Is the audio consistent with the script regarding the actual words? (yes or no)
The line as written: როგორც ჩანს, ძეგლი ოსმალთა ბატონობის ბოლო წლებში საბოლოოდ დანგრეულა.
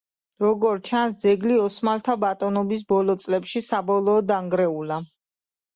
yes